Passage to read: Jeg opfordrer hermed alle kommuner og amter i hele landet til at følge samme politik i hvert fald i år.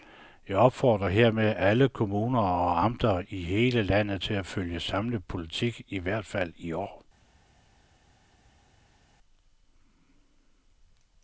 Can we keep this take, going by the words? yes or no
yes